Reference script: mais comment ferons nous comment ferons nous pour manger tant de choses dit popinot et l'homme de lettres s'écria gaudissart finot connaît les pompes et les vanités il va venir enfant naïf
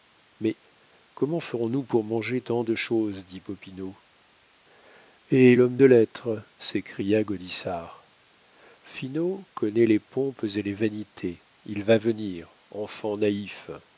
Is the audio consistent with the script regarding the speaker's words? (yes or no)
no